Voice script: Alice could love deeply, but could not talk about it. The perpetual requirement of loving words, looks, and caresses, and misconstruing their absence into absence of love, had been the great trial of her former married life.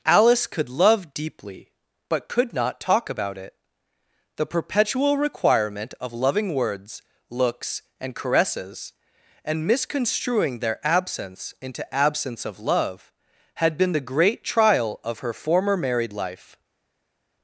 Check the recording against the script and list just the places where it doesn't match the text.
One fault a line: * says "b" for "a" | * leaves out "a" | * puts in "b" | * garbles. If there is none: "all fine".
all fine